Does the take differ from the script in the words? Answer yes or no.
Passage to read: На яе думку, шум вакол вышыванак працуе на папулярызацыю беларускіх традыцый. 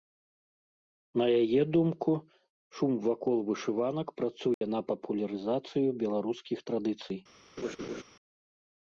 no